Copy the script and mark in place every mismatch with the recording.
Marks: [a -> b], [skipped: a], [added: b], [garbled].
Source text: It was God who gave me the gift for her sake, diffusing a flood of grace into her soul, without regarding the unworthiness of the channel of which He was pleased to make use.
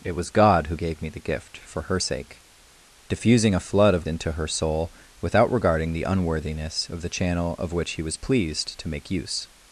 It was God who gave me the gift for her sake, diffusing a flood of [skipped: grace] into her soul, without regarding the unworthiness of the channel of which He was pleased to make use.